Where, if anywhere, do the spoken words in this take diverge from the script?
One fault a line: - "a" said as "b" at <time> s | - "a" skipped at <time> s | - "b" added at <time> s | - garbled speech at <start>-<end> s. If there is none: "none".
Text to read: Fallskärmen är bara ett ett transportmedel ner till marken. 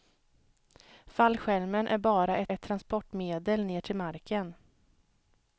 none